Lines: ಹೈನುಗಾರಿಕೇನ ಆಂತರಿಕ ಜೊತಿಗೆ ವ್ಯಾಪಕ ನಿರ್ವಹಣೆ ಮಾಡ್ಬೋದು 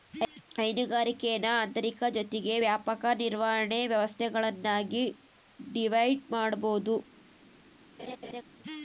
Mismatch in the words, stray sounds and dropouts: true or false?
true